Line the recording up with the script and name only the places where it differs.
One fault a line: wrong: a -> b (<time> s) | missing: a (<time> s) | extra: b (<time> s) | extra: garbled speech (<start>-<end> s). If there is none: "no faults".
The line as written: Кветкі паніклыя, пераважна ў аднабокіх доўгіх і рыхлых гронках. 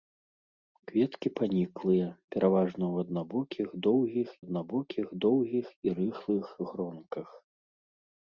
extra: аднабокіх доўгіх (4.4 s)